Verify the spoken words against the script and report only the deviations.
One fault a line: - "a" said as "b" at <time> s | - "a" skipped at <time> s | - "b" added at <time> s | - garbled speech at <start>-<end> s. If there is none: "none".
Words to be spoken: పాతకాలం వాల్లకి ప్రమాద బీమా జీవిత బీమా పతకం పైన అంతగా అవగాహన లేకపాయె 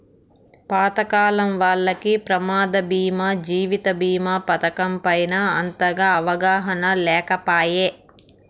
none